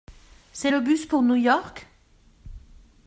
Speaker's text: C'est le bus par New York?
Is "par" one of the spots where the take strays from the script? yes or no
yes